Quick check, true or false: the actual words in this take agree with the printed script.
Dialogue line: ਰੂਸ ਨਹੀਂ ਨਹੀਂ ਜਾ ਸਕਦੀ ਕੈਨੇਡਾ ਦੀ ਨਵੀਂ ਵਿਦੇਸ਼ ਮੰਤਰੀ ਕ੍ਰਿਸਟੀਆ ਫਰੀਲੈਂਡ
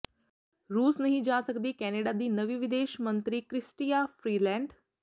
false